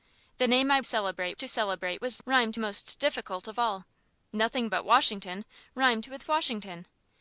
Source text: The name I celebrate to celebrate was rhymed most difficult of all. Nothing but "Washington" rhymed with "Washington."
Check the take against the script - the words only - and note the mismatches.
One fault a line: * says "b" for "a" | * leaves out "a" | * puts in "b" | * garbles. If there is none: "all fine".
all fine